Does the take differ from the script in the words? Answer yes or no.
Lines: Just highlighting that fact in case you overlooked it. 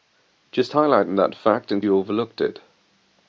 yes